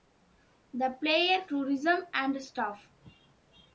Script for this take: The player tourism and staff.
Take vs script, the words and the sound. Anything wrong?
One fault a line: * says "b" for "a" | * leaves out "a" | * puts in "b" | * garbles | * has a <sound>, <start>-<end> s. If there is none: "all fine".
all fine